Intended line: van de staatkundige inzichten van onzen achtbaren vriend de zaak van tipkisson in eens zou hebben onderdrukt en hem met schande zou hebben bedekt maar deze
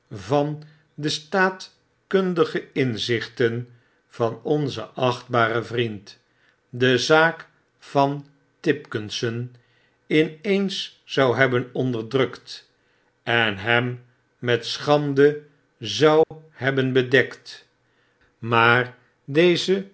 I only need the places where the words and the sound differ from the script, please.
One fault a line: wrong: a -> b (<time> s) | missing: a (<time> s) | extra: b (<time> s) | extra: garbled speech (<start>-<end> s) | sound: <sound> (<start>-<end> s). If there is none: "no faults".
sound: dropout (16.2-16.3 s)